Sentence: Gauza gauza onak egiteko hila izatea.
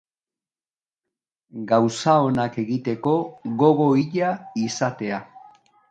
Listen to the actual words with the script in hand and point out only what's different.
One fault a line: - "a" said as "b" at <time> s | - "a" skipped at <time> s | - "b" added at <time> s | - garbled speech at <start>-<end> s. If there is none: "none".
- "gauza" skipped at 2.1 s
- "gogo" added at 3.6 s